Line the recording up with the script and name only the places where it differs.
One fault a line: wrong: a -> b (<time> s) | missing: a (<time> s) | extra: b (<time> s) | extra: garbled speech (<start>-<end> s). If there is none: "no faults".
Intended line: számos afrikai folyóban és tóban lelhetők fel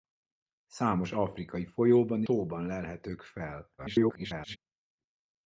missing: és (2.2 s)
extra: garbled speech (3.8-4.6 s)